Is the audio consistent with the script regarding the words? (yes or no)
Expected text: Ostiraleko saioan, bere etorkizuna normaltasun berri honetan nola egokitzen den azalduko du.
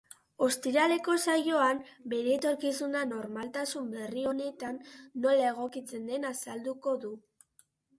yes